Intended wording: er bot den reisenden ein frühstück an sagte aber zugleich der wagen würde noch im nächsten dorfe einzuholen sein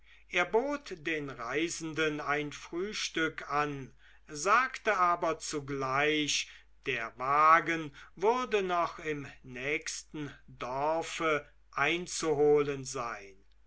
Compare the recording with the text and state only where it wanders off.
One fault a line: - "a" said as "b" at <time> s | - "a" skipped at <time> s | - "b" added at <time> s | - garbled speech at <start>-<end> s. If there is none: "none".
none